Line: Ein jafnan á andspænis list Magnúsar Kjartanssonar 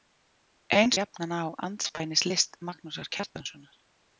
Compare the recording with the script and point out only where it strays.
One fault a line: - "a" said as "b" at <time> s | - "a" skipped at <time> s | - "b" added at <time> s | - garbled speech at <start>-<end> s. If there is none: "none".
none